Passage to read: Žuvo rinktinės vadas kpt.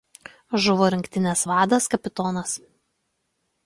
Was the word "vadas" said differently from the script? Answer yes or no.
no